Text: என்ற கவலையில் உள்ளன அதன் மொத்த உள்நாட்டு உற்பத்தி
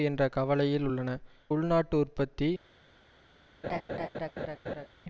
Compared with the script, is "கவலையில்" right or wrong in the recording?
right